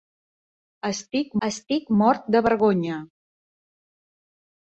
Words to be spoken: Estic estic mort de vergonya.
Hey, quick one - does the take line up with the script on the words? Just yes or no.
yes